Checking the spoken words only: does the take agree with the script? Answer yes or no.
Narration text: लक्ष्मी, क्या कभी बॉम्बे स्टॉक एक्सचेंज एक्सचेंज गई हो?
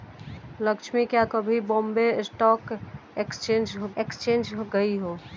yes